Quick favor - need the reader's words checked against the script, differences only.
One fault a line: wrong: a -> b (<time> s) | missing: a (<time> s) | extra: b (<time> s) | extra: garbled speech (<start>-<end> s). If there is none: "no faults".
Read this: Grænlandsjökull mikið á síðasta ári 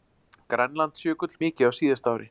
no faults